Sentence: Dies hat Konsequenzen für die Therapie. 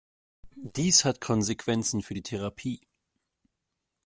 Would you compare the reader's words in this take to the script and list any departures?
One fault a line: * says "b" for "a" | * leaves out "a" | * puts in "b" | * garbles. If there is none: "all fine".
all fine